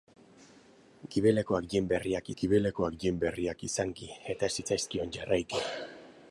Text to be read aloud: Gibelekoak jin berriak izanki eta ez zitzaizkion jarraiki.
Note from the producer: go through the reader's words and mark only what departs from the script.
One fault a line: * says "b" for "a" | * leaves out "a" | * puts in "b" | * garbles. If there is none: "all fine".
* puts in "gibelekoak jin berriak"